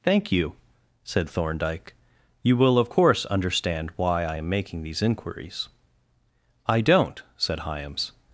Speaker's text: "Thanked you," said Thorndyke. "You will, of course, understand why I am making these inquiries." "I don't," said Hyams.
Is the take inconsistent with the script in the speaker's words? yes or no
yes